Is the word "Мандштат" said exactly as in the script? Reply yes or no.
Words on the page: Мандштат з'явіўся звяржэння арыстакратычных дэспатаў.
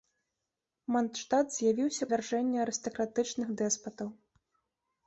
yes